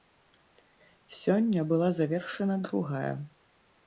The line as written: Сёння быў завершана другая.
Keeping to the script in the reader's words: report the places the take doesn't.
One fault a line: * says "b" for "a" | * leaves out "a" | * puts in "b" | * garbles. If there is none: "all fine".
* says "была" for "быў"